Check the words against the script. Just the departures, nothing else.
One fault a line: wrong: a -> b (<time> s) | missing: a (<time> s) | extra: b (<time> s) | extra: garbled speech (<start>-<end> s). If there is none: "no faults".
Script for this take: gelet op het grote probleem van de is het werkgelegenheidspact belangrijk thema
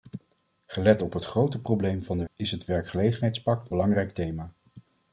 no faults